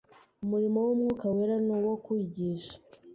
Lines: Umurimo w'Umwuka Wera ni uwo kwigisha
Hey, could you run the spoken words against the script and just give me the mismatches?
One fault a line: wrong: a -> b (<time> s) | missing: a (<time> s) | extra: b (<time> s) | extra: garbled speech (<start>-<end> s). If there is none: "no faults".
no faults